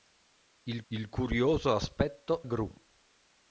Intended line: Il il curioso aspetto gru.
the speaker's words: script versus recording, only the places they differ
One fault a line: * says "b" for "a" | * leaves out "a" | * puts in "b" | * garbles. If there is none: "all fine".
all fine